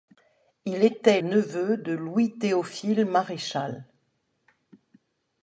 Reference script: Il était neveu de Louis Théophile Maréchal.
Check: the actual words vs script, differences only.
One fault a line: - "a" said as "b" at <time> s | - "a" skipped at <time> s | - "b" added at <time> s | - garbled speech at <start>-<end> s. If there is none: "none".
none